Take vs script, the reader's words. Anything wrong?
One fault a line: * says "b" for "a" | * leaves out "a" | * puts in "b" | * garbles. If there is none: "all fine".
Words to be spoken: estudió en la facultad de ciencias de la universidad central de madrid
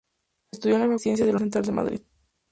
* leaves out "facultad de"
* leaves out "universidad"